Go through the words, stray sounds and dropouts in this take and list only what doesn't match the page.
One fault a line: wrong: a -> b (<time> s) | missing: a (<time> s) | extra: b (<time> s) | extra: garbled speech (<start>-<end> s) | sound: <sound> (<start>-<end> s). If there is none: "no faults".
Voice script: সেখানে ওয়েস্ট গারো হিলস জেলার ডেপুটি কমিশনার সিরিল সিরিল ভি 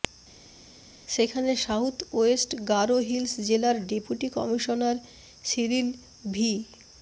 extra: সাউথ (1.7 s)
missing: সিরিল (5.9 s)